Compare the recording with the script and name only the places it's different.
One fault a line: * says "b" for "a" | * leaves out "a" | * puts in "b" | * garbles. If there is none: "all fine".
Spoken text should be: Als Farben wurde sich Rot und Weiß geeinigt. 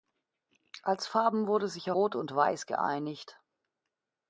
all fine